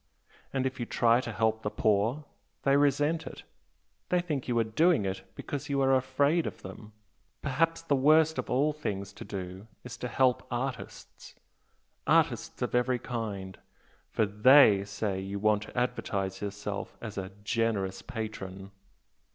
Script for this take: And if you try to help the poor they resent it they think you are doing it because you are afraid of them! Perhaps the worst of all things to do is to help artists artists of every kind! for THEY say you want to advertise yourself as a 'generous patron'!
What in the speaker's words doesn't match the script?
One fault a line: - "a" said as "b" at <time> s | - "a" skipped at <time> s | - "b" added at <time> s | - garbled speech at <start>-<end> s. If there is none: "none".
none